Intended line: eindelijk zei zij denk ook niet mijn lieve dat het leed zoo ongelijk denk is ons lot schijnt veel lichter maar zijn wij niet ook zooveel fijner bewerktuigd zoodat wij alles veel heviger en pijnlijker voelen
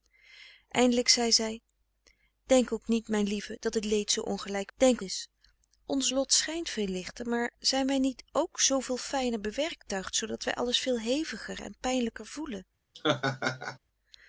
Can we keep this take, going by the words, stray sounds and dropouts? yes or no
no